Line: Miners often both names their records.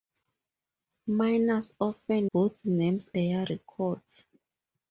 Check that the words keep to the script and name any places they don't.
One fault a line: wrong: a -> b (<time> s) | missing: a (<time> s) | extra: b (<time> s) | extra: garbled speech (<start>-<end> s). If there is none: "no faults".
no faults